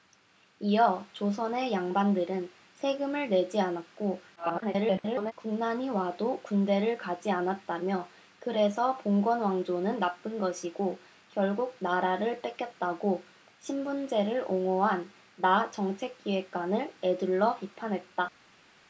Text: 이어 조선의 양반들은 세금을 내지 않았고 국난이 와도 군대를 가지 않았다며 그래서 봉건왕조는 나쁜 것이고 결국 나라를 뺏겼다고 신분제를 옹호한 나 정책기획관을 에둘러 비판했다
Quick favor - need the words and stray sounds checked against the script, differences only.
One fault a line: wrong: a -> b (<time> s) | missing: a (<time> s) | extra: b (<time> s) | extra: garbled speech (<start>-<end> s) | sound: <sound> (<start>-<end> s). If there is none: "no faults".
extra: garbled speech (4.4-5.3 s)